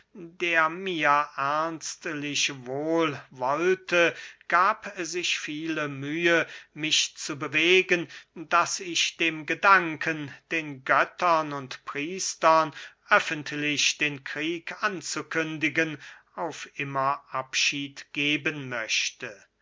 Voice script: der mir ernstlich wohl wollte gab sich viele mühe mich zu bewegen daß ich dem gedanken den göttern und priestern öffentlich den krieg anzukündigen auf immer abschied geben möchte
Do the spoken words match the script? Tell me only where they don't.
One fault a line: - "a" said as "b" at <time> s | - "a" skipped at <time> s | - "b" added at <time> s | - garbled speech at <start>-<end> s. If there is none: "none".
none